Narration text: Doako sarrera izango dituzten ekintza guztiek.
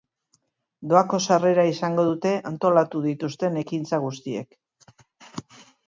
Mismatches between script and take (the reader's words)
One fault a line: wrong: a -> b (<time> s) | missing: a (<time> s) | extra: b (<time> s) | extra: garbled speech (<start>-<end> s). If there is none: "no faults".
extra: dute antolatu (2.1 s)